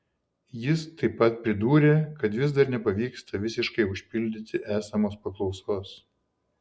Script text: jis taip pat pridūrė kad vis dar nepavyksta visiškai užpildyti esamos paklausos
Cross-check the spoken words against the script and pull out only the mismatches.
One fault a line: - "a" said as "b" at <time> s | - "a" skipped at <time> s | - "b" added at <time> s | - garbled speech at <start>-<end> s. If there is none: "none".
none